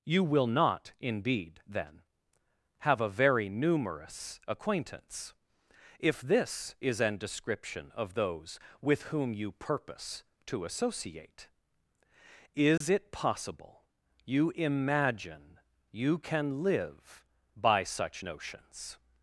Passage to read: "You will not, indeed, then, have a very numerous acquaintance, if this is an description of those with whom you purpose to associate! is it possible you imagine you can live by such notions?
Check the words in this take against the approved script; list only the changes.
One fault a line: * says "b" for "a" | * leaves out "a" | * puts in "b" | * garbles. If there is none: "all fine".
all fine